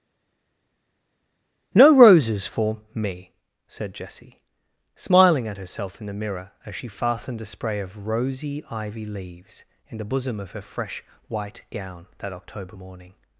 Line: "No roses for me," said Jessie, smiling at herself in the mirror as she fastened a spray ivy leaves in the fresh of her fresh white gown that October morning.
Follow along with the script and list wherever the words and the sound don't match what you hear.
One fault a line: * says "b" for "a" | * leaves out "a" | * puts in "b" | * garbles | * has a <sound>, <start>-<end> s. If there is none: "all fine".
* puts in "of rosy"
* says "bosom" for "fresh"